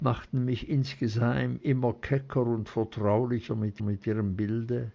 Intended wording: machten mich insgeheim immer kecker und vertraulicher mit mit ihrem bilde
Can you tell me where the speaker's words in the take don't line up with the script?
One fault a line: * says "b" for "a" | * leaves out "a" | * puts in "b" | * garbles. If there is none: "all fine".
all fine